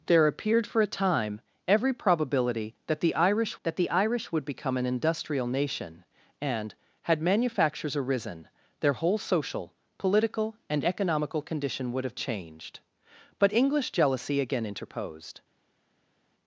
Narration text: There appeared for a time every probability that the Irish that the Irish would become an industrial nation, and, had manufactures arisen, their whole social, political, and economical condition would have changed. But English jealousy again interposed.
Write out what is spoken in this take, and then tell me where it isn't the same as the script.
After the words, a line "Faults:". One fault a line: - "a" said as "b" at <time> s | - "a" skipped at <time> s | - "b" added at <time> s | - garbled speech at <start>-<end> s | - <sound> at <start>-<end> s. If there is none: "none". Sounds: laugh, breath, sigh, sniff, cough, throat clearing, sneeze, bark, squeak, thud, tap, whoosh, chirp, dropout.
There appeared for a time every probability that the Irish that the Irish would become an industrial nation, and, had manufactures arisen, their whole social, political, and economical condition would have changed. But English jealousy again interposed.
Faults:
none